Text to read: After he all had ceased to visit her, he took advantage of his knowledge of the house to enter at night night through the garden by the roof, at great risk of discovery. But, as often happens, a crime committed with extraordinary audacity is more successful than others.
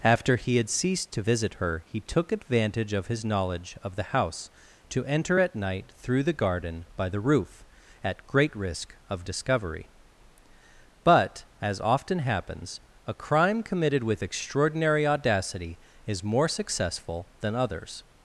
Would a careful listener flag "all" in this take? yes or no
yes